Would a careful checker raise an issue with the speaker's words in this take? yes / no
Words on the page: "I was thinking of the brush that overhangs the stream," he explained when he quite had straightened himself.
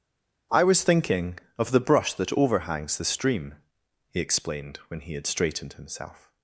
yes